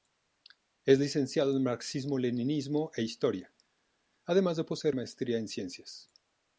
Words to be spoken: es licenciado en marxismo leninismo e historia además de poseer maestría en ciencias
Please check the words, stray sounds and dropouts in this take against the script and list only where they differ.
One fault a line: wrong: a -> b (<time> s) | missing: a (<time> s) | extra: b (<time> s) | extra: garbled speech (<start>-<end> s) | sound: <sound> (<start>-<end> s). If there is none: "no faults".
no faults